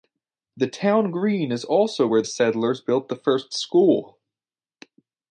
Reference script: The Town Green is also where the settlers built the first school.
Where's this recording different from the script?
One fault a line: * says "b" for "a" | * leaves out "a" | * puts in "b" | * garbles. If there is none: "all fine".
* leaves out "the"